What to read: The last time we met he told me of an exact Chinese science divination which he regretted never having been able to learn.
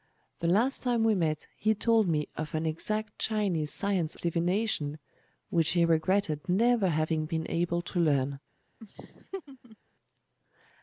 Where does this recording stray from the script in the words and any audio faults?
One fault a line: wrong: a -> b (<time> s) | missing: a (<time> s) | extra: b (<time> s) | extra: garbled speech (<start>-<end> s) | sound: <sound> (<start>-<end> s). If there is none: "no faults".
sound: laugh (8.8-9.8 s)